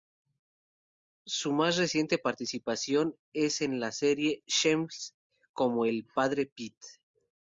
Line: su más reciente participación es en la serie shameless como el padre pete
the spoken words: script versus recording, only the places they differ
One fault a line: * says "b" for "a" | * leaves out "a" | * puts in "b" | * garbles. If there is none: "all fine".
all fine